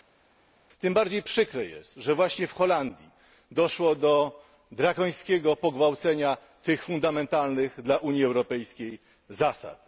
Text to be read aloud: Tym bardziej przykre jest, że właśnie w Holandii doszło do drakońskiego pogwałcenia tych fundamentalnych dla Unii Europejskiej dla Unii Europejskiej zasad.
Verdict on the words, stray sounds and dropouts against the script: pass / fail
fail